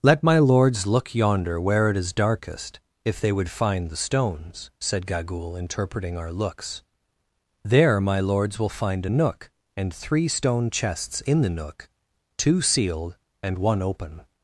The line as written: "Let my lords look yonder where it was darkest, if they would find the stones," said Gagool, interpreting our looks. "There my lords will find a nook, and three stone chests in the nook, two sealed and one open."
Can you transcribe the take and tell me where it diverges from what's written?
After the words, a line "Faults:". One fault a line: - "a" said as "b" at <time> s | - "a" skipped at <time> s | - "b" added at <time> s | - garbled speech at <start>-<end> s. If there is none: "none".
"Let my lords look yonder where it is darkest, if they would find the stones," said Gagool, interpreting our looks. "There my lords will find a nook, and three stone chests in the nook, two sealed and one open."
Faults:
- "was" said as "is" at 1.9 s